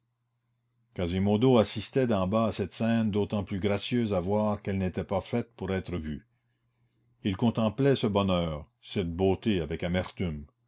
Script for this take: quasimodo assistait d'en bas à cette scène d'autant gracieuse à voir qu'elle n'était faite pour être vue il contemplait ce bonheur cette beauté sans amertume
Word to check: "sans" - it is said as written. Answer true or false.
false